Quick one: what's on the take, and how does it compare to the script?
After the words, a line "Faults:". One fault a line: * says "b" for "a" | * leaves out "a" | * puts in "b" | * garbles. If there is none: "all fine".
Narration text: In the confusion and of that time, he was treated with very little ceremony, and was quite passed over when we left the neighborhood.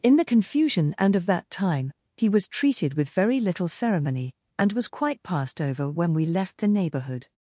In the confusion and of that time, he was treated with very little ceremony, and was quite passed over when we left the neighborhood.
Faults:
all fine